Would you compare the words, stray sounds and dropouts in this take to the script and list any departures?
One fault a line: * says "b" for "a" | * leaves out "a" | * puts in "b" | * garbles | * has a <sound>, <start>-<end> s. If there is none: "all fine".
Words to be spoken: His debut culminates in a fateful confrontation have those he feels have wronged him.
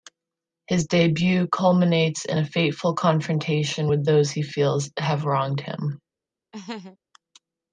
* says "with" for "have"
* has a laugh, 6.5-7.0 s